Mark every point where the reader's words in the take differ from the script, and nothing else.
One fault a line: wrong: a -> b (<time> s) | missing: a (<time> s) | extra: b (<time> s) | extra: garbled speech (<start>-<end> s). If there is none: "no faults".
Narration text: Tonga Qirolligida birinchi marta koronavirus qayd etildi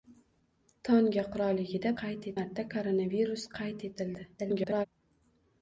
wrong: birinchi -> qayd (2.0 s)
extra: garbled speech (4.4-4.9 s)